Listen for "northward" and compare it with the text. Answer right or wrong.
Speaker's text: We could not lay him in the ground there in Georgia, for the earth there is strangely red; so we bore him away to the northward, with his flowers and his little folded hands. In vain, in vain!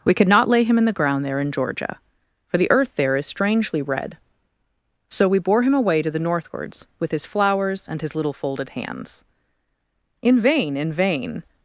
wrong